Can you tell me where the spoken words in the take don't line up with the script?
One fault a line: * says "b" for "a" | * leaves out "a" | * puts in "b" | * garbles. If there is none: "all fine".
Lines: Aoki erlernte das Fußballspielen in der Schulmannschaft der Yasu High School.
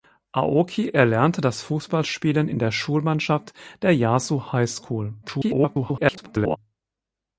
* garbles